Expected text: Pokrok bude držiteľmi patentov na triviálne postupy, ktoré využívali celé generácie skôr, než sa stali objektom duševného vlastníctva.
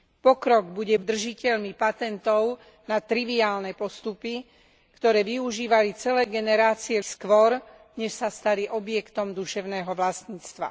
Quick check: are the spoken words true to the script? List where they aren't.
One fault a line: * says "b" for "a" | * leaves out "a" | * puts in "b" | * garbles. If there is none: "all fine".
all fine